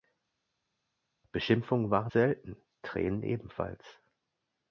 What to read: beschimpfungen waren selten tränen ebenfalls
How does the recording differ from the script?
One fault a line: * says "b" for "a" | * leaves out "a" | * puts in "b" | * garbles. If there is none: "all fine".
all fine